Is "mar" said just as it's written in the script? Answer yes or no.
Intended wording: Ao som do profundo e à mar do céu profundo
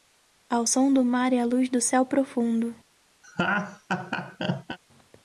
no